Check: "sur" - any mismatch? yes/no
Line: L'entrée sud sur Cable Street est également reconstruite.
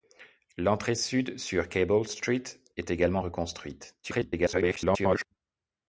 no